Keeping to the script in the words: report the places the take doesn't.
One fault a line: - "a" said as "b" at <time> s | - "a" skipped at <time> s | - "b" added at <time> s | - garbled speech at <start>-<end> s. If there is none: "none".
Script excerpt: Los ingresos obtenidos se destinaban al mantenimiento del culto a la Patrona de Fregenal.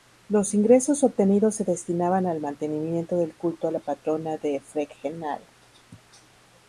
none